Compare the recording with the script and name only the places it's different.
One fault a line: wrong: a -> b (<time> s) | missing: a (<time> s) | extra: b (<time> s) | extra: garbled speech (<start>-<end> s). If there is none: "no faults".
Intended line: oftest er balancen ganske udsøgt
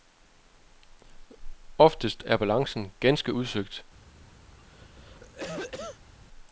no faults